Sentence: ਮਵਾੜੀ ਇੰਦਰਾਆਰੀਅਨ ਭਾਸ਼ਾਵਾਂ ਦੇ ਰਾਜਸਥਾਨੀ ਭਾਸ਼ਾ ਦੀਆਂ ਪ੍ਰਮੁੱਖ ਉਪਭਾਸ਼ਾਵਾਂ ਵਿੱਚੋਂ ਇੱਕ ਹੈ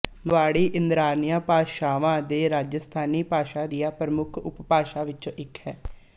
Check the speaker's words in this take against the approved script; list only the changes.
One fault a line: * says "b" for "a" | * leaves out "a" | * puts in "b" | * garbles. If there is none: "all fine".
all fine